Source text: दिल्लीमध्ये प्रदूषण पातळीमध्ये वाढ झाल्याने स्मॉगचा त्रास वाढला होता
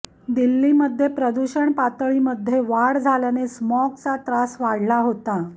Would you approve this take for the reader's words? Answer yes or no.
yes